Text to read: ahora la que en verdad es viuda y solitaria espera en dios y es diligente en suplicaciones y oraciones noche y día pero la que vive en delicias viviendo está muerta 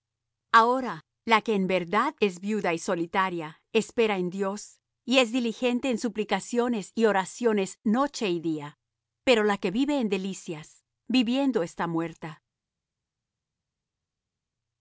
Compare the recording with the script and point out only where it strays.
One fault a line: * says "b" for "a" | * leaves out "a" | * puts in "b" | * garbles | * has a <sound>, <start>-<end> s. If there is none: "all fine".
all fine